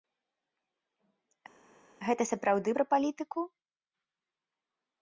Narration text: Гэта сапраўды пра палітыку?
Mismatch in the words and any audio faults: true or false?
false